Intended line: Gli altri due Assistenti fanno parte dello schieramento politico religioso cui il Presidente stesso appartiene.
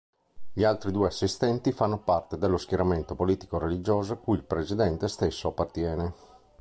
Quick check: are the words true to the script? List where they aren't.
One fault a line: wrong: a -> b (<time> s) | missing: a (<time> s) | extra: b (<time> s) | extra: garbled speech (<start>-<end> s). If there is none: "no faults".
no faults